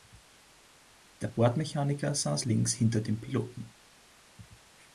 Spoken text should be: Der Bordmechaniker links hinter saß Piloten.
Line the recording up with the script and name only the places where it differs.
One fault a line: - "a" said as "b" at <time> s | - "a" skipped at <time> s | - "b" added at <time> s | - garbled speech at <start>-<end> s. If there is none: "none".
- "saß" added at 2.1 s
- "saß" said as "dem" at 3.0 s